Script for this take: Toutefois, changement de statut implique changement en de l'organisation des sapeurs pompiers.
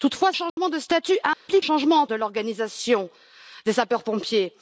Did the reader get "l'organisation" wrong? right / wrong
right